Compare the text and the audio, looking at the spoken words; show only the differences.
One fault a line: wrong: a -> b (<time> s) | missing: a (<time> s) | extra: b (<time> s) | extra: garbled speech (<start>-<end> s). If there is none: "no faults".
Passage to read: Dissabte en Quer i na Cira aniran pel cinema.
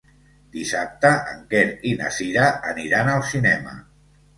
wrong: pel -> al (3.2 s)